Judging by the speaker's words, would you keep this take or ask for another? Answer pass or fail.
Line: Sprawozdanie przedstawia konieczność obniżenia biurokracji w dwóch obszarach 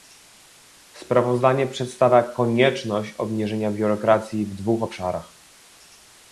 pass